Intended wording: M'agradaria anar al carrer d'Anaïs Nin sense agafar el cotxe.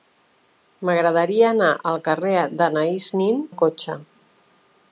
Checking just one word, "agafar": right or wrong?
wrong